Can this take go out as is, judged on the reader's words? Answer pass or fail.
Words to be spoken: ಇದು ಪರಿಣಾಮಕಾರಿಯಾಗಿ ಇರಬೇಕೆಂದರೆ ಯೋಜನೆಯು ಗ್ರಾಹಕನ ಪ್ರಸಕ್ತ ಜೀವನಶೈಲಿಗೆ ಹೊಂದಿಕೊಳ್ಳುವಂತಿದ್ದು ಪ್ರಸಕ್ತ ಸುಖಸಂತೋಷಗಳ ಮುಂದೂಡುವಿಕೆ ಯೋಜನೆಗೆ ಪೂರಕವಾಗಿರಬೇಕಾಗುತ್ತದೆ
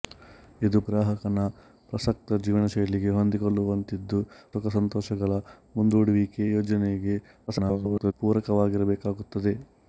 fail